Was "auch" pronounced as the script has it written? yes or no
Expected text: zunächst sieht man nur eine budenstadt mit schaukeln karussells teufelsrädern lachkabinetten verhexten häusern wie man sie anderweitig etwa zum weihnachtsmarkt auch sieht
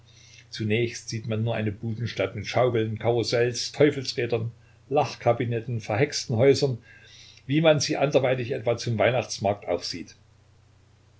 yes